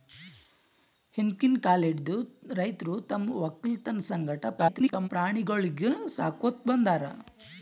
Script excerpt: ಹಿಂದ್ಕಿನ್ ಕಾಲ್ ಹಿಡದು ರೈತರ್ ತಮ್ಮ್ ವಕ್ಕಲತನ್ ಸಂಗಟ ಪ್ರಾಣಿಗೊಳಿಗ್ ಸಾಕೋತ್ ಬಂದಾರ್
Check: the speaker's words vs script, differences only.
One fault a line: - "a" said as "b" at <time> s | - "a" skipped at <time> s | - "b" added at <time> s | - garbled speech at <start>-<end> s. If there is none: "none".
- garbled speech at 4.6-5.1 s